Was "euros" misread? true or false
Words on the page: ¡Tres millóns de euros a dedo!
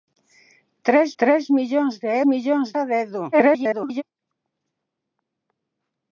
true